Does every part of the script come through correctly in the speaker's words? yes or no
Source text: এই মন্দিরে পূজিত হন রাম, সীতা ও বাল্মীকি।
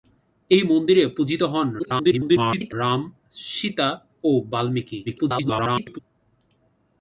no